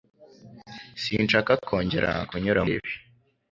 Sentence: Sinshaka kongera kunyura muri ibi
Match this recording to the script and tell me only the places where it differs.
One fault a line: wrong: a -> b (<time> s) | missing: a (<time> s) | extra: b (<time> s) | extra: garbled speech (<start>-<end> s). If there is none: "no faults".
missing: muri (2.6 s)